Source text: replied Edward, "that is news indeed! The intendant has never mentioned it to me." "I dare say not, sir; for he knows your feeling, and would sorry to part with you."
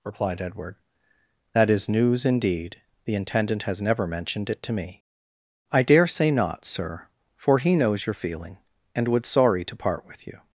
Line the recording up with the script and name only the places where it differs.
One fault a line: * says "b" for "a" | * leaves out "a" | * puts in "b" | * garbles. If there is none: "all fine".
all fine